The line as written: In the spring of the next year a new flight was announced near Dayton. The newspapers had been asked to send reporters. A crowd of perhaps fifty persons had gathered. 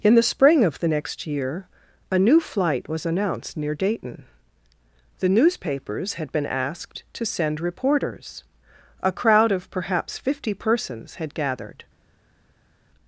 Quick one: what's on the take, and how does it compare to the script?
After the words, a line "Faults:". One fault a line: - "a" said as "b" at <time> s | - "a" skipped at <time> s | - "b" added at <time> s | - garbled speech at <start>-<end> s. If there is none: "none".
In the spring of the next year a new flight was announced near Dayton. The newspapers had been asked to send reporters. A crowd of perhaps fifty persons had gathered.
Faults:
none